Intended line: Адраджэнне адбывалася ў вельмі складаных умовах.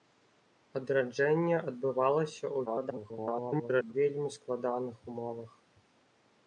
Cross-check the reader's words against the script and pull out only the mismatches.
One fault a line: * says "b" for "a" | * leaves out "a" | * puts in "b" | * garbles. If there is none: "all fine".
* garbles